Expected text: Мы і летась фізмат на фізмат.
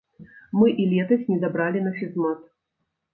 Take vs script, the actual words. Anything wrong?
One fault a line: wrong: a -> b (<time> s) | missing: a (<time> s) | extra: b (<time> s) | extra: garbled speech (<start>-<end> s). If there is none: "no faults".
wrong: фізмат -> недабралі (1.3 s)